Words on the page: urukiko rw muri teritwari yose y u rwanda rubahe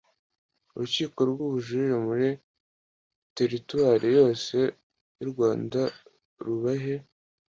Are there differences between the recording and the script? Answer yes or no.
yes